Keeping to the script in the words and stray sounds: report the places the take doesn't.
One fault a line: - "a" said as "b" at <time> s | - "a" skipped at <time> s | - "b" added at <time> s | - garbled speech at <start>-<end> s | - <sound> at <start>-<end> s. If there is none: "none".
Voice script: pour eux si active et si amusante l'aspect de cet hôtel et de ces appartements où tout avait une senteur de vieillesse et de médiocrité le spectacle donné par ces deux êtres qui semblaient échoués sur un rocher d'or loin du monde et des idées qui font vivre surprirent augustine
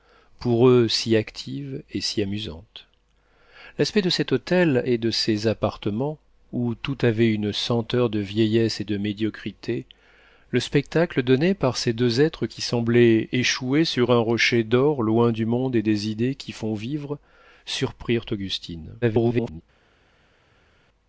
- garbled speech at 19.0-19.6 s